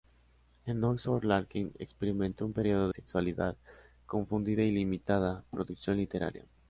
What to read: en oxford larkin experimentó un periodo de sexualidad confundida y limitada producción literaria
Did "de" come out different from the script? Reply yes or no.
yes